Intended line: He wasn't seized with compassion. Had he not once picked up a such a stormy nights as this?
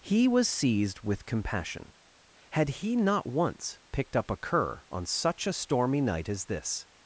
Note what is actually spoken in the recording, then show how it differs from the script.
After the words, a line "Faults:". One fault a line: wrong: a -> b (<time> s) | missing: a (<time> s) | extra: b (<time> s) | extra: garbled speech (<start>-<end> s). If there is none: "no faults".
He was seized with compassion. Had he not once picked up a cur on such a stormy night as this?
Faults:
wrong: wasn't -> was (0.3 s)
extra: cur on (4.3 s)
wrong: nights -> night (6.0 s)